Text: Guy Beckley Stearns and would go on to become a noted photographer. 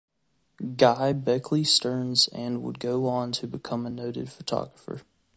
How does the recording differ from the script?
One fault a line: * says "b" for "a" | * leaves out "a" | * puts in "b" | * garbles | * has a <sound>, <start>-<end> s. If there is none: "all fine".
all fine